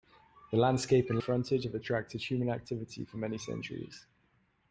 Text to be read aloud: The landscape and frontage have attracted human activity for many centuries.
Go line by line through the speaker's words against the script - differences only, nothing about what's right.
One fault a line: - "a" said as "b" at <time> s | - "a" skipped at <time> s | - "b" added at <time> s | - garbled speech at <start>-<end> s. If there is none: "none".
none